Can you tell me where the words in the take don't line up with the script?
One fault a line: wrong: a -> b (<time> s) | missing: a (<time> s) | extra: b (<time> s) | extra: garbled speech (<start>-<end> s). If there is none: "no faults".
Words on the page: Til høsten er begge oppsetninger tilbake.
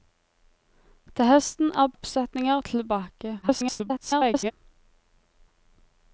missing: begge (1.9 s)
extra: garbled speech (3.4-4.5 s)